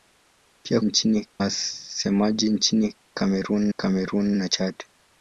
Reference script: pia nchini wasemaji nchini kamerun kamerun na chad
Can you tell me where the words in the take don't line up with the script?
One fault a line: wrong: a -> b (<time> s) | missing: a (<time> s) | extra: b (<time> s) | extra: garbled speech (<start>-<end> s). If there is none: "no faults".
no faults